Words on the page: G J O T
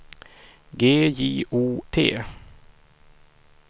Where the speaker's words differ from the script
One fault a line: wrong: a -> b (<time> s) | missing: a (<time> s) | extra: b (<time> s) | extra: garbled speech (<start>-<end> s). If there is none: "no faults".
no faults